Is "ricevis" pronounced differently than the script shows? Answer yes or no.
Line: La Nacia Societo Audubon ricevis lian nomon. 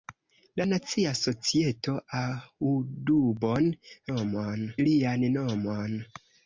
yes